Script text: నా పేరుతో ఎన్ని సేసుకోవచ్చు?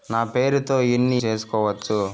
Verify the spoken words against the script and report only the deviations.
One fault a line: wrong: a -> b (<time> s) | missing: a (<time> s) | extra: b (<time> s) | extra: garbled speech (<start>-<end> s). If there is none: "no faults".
no faults